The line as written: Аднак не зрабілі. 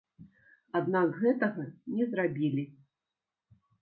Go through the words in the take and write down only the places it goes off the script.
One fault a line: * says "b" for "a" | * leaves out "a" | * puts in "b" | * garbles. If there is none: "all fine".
* puts in "гэтага"